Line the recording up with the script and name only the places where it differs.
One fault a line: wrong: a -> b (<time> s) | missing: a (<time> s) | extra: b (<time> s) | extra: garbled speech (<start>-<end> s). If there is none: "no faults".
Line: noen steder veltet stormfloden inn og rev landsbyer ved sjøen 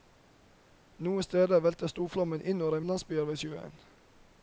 no faults